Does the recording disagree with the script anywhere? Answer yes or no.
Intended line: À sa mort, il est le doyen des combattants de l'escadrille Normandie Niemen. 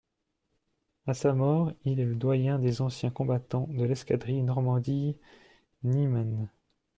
yes